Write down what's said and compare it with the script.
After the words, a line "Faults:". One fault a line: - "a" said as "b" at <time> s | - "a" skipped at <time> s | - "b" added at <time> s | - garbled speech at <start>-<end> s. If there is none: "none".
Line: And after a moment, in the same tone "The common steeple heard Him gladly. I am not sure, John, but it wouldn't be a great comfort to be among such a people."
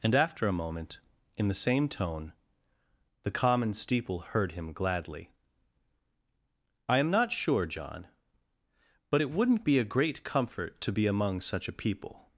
And after a moment, in the same tone "The common steeple heard Him gladly. I am not sure, John, but it wouldn't be a great comfort to be among such a people."
Faults:
none